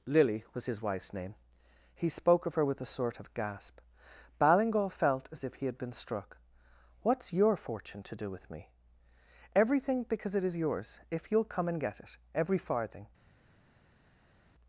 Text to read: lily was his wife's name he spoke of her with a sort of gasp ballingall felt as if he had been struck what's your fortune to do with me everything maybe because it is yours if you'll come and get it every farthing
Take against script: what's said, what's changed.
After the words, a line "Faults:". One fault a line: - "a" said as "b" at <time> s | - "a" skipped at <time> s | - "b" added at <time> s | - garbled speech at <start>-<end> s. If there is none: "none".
lily was his wife's name he spoke of her with a sort of gasp ballingall felt as if he had been struck what's your fortune to do with me everything because it is yours if you'll come and get it every farthing
Faults:
- "maybe" skipped at 10.0 s